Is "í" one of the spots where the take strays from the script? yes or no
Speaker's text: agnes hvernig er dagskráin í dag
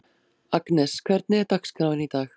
no